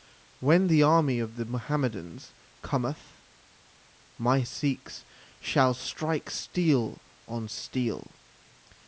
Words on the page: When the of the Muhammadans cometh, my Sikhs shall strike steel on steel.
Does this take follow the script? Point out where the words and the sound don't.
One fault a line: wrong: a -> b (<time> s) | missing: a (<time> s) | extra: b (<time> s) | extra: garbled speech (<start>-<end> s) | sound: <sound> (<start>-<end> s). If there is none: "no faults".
extra: army (0.8 s)